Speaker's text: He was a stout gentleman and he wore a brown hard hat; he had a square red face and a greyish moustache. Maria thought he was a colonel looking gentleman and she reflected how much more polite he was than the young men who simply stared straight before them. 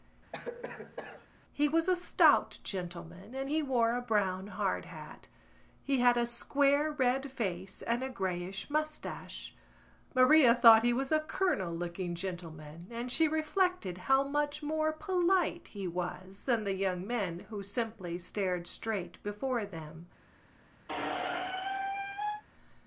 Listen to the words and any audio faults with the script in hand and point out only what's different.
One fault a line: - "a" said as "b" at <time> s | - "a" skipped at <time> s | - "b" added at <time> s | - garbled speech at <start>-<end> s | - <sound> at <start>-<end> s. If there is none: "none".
- cough at 0.3-1.3 s
- squeak at 20.9-22.4 s